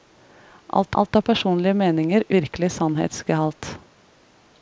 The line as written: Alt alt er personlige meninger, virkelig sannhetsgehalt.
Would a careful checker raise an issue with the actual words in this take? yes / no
no